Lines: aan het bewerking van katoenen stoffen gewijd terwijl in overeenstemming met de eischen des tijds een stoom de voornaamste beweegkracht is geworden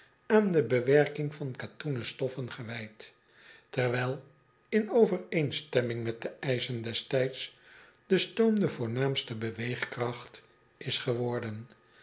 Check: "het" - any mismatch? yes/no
yes